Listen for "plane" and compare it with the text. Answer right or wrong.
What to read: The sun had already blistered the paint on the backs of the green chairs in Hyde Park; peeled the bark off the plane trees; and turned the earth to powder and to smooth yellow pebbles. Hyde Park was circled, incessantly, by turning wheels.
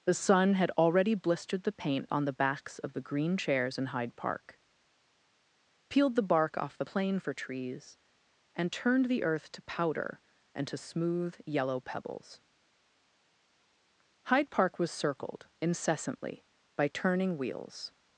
wrong